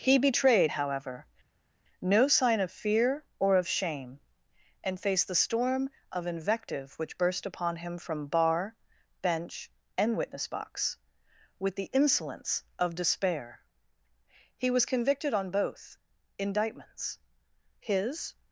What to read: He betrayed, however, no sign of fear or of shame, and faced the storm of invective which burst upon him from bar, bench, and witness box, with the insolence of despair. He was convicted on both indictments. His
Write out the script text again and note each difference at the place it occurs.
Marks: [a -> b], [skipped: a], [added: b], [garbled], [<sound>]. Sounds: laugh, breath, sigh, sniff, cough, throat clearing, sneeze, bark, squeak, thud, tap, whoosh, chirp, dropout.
He betrayed, however, no sign of fear or of shame, and faced the storm of invective which burst upon him from bar, bench, and witness box, with the insolence of despair. He was convicted on both indictments. His